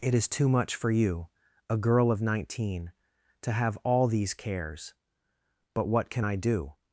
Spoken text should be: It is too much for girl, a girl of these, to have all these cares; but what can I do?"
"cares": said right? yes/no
yes